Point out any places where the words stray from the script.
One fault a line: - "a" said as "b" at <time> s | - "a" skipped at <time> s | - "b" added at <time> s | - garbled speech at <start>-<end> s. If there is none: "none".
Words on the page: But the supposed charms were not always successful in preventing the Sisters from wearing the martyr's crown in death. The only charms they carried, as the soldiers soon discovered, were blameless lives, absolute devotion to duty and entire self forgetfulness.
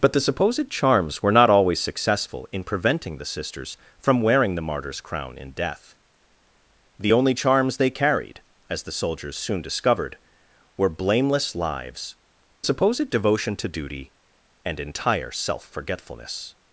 - "absolute" said as "supposed" at 12.6 s